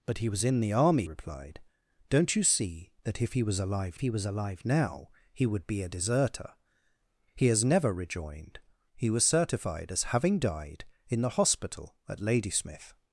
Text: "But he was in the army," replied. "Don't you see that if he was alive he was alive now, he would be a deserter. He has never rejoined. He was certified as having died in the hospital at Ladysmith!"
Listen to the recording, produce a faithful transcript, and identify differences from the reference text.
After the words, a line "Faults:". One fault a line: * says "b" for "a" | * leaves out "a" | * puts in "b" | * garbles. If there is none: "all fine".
"But he was in the army," replied. "Don't you see that if he was alive he was alive now, he would be a deserter. He has never rejoined. He was certified as having died in the hospital at Ladysmith!"
Faults:
all fine